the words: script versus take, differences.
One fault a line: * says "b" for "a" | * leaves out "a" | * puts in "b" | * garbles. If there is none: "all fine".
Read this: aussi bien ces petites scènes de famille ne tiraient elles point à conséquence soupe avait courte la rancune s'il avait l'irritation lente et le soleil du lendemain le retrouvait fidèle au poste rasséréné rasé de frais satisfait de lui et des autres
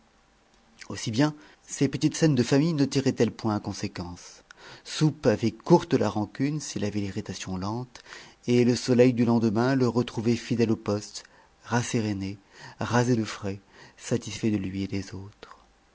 all fine